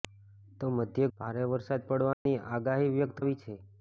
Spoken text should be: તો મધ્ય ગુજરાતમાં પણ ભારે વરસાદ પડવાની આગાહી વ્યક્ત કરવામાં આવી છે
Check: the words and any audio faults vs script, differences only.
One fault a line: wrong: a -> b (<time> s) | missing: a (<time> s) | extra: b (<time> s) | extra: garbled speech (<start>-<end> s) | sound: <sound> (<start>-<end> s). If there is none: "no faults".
missing: ગુજરાતમાં પણ (1.1 s)
sound: dropout (2.1-2.3 s)
missing: કરવામાં (3.2 s)